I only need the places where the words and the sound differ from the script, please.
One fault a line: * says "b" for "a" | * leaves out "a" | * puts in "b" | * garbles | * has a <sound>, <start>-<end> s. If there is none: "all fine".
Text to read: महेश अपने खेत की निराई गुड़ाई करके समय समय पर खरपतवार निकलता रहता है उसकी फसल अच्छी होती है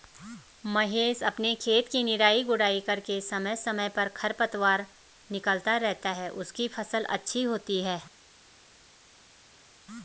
all fine